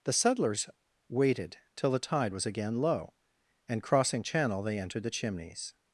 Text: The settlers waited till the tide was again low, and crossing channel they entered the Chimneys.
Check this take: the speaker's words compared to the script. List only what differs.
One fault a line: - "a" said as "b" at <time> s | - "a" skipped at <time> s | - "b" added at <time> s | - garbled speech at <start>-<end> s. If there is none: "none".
none